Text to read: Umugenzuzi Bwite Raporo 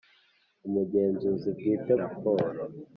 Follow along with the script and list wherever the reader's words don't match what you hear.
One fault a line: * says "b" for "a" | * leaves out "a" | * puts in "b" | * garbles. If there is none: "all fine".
all fine